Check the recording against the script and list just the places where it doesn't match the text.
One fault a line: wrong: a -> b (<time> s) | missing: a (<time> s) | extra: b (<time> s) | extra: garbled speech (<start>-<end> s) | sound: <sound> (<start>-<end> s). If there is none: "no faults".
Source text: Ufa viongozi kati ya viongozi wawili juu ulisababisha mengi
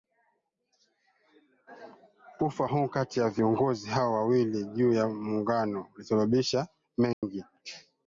wrong: viongozi -> huu (2.6 s)
extra: hao (3.9 s)
extra: ya Muungano (4.9 s)
sound: dropout (7.1-7.2 s)